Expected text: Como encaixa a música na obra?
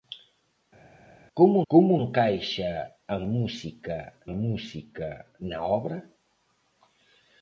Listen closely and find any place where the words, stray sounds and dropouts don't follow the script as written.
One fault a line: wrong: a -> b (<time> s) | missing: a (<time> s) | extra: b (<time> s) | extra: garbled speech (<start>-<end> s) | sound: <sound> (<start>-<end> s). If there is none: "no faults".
extra: como (1.7 s)
extra: música (4.3 s)